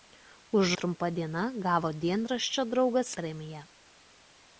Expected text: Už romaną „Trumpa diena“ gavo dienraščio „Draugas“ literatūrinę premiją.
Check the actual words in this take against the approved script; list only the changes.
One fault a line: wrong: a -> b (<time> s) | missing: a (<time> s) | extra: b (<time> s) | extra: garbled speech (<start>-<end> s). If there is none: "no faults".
missing: romaną (0.7 s)
missing: literatūrinę (3.1 s)